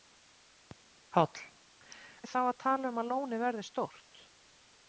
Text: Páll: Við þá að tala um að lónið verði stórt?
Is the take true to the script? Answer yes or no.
yes